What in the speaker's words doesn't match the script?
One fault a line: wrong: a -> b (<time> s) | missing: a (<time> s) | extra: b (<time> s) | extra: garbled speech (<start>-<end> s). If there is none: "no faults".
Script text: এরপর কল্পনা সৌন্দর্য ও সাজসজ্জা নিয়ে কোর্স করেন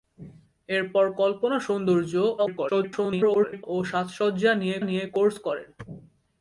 extra: garbled speech (2.4-3.7 s)
extra: নিয়ে (4.8 s)